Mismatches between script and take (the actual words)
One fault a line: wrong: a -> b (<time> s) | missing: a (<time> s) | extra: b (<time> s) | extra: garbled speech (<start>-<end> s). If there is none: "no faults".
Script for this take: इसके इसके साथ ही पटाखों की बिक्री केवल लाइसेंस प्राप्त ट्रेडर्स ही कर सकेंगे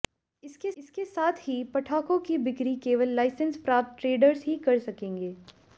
no faults